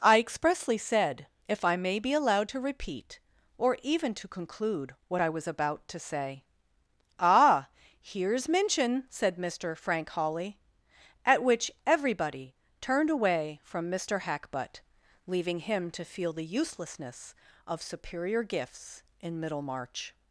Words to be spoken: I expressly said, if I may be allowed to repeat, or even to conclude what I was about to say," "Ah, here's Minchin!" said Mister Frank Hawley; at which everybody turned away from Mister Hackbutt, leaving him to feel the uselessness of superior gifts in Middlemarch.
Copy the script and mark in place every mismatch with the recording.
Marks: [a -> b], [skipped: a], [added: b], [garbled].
I expressly said, if I may be allowed to repeat, or even to conclude what I was about to say," "Ah, here's Minchin!" said Mister Frank Hawley; at which everybody turned away from Mister Hackbutt, leaving him to feel the uselessness of superior gifts in Middlemarch.